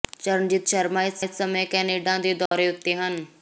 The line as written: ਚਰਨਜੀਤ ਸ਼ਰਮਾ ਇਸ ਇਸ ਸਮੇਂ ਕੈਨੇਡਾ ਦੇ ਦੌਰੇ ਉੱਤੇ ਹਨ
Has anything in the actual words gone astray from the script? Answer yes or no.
no